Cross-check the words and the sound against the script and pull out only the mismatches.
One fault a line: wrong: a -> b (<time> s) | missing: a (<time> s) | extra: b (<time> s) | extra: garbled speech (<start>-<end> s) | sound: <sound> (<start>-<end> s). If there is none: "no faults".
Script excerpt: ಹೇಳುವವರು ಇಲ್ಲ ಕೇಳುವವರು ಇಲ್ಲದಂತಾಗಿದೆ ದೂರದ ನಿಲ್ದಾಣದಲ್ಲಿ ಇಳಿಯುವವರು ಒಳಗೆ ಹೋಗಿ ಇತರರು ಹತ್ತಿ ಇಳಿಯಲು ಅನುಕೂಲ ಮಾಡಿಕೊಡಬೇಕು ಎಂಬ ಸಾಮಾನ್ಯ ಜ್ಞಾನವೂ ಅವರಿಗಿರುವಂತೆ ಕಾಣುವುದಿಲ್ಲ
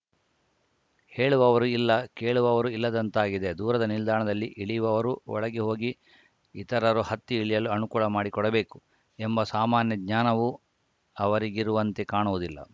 no faults